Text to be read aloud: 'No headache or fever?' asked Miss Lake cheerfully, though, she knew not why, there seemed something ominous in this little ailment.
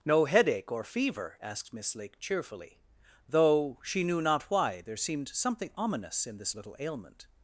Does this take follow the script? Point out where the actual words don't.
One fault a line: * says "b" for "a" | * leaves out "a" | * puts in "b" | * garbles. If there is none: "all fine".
all fine